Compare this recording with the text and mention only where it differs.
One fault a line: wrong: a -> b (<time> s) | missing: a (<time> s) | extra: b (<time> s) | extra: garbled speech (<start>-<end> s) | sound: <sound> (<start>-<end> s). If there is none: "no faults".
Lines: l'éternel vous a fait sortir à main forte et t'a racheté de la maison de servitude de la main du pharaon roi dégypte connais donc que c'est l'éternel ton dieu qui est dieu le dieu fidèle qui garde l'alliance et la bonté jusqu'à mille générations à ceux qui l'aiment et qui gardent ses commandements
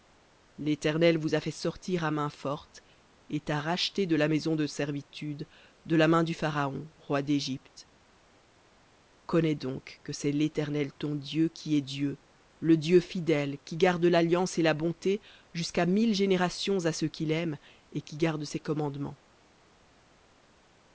no faults